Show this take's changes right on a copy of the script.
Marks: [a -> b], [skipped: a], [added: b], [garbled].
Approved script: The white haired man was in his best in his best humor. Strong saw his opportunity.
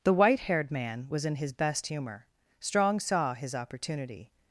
The white haired man was in his best [skipped: in his best] humor. Strong saw his opportunity.